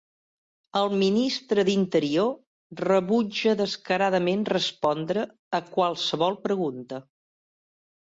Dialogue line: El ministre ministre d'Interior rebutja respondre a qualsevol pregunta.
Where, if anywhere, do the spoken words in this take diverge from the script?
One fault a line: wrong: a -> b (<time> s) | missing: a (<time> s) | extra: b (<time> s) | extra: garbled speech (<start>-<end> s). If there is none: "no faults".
missing: ministre (1.6 s)
extra: descaradament (3.6 s)